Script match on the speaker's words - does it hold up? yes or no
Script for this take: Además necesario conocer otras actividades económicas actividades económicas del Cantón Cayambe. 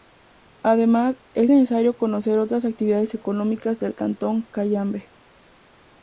no